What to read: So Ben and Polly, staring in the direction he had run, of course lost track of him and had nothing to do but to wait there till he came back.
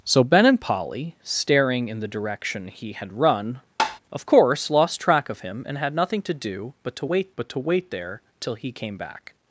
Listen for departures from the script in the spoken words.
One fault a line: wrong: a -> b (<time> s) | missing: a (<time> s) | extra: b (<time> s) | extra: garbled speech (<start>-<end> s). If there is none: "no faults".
extra: but to wait (7.4 s)